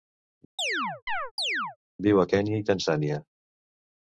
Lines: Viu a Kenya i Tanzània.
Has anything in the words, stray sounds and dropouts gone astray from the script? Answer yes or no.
yes